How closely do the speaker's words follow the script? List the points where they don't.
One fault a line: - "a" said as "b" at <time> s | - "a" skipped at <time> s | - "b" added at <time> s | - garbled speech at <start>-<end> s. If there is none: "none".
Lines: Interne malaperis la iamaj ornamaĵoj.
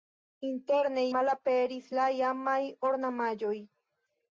none